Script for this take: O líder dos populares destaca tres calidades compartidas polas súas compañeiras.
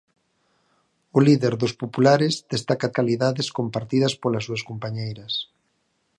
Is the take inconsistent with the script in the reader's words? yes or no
yes